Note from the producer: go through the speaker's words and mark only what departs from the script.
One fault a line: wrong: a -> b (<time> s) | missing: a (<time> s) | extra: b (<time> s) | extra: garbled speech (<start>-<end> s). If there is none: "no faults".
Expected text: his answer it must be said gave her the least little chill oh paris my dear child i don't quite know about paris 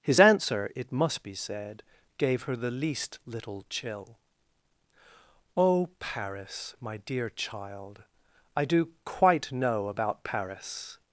wrong: don't -> do (8.6 s)